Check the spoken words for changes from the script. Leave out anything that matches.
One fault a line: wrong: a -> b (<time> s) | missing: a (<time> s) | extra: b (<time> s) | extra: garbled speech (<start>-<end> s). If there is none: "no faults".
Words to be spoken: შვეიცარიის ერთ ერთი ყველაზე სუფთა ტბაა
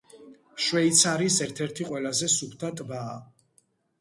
no faults